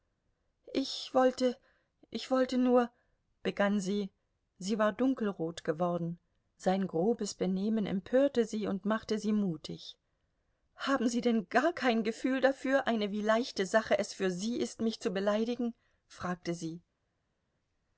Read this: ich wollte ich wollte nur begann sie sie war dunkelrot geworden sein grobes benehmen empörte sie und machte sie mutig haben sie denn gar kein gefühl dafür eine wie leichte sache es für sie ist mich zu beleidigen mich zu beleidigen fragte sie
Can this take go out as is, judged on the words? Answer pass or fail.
fail